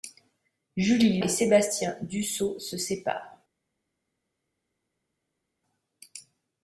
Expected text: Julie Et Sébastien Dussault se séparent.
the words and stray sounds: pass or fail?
pass